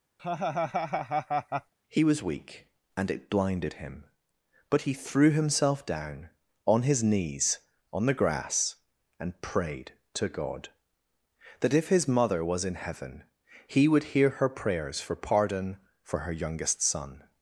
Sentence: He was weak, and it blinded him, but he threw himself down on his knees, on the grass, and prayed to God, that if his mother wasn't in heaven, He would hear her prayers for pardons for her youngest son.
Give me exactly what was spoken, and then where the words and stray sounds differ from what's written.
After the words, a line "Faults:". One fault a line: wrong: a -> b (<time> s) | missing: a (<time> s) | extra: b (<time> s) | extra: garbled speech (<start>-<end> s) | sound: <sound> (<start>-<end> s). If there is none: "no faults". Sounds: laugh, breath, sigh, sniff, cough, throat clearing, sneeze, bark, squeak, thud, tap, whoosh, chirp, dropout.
He was weak, and it blinded him, but he threw himself down on his knees, on the grass, and prayed to God, that if his mother was in heaven, He would hear her prayers for pardon for her youngest son.
Faults:
sound: laugh (0.2-1.7 s)
wrong: wasn't -> was (12.4 s)
wrong: pardons -> pardon (15.2 s)